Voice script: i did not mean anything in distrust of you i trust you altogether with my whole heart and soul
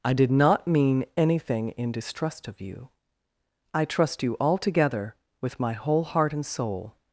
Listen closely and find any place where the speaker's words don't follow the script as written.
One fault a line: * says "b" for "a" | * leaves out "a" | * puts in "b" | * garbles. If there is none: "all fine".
all fine